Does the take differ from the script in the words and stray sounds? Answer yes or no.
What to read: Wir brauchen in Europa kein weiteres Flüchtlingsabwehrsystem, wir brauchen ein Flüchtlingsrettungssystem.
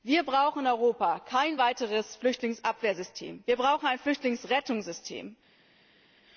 no